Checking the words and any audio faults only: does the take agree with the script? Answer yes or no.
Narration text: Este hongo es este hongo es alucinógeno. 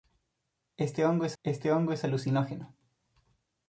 yes